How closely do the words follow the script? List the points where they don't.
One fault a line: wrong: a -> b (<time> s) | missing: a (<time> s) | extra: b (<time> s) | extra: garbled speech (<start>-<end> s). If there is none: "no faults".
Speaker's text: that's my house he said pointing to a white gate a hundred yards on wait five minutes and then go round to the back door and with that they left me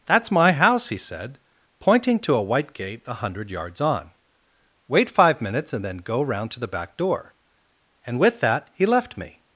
wrong: they -> he (8.7 s)